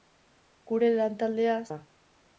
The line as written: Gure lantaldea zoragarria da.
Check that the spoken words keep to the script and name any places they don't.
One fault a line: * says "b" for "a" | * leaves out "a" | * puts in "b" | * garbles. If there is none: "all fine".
* leaves out "zoragarria"